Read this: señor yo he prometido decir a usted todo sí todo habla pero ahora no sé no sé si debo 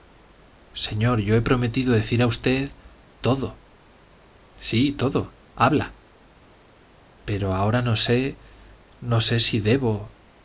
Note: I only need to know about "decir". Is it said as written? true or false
true